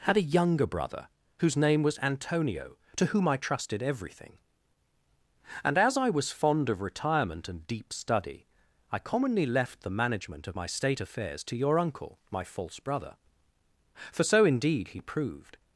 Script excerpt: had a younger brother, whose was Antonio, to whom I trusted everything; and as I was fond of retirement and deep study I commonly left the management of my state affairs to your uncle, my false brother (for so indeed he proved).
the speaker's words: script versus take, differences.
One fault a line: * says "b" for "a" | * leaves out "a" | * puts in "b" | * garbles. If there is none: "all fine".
* puts in "name"